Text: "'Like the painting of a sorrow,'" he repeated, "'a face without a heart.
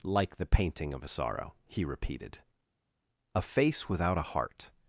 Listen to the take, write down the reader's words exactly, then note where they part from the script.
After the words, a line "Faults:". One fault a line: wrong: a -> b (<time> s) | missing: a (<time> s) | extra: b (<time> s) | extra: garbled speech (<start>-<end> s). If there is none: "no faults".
"'Like the painting of a sorrow,'" he repeated, "'a face without a heart.
Faults:
no faults